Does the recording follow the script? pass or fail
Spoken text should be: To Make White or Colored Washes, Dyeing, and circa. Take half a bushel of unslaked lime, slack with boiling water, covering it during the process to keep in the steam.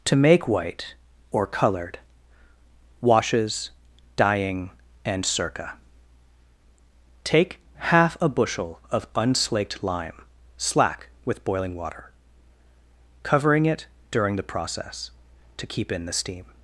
pass